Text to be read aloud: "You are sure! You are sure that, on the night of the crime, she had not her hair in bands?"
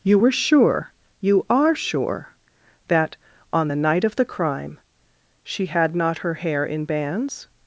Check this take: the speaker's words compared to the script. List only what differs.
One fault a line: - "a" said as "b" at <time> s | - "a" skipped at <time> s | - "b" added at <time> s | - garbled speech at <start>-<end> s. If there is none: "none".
- "are" said as "were" at 0.2 s